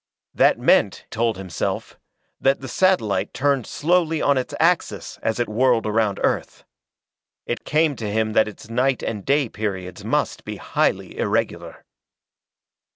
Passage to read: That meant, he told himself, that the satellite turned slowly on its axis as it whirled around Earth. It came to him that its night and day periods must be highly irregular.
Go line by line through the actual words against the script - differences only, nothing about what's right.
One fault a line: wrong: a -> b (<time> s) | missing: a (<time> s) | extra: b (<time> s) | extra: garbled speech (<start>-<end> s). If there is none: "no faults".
missing: he (1.1 s)